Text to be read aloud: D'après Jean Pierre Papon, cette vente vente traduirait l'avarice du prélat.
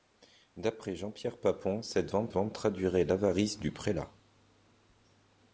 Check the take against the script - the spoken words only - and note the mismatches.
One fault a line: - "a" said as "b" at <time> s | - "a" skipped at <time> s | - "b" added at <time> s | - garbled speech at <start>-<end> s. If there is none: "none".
none